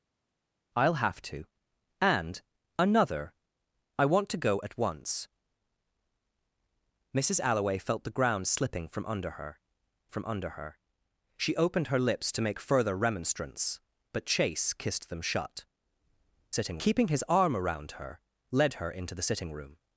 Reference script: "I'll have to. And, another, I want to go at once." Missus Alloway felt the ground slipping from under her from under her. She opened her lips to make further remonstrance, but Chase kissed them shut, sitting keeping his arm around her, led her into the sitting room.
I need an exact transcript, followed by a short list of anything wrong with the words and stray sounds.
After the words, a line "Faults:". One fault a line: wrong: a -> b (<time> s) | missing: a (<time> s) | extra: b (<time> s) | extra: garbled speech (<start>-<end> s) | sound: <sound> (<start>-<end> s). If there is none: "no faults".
"I'll have to. And, another, I want to go at once." Missus Alloway felt the ground slipping from under her from under her. She opened her lips to make further remonstrance, but Chase kissed them shut, sitting keeping his arm around her, led her into the sitting room.
Faults:
no faults